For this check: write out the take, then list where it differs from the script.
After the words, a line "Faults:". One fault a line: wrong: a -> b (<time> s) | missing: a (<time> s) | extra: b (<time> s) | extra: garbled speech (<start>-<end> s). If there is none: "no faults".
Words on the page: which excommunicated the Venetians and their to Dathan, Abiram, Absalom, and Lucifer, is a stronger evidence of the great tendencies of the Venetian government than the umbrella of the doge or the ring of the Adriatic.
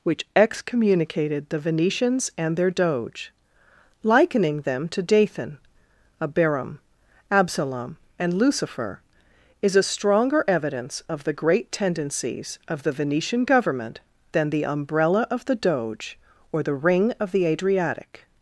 which excommunicated the Venetians and their doge, likening them to Dathan, Abiram, Absalom, and Lucifer, is a stronger evidence of the great tendencies of the Venetian government than the umbrella of the doge or the ring of the Adriatic.
Faults:
extra: doge likening them (2.7 s)